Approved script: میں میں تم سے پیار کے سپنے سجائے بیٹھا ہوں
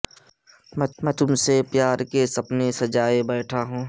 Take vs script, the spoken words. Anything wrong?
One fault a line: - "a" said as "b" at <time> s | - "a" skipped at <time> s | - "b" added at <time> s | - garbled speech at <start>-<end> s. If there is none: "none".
none